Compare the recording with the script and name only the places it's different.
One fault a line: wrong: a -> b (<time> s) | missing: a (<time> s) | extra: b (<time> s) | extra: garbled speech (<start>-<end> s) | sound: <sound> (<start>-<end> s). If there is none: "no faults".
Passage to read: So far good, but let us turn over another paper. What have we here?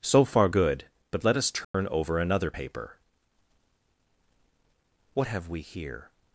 sound: dropout (1.6-1.7 s)